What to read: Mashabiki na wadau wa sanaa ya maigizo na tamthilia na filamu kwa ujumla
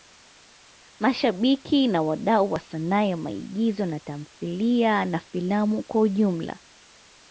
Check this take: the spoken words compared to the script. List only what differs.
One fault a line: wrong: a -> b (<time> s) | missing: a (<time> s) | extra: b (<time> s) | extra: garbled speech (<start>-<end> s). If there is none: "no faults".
no faults